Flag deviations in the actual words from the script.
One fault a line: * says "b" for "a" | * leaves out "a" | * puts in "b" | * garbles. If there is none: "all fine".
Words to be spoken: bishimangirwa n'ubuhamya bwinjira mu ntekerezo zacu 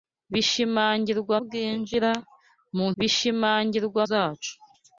* leaves out "n'ubuhamya"
* says "bishimangirwa" for "ntekerezo"